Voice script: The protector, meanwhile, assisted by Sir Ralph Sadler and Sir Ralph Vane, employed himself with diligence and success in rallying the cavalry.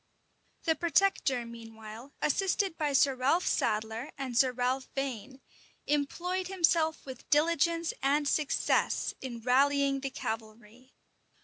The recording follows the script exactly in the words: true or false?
true